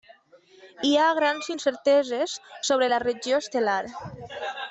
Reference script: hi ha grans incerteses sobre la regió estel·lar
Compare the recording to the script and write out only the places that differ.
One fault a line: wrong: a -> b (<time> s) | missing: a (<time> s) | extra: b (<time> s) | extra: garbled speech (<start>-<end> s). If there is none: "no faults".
no faults